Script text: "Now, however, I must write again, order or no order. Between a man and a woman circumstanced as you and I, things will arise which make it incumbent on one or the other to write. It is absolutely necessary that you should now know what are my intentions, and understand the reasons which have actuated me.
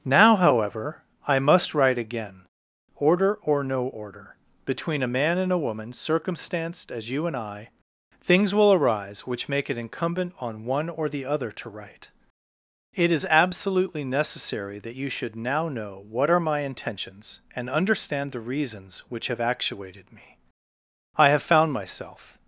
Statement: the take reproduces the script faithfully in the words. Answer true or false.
false